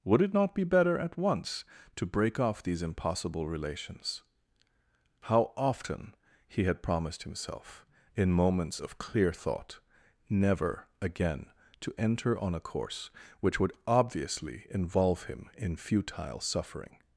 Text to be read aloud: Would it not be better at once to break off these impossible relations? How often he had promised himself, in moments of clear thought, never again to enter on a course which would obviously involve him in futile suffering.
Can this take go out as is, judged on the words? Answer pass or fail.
pass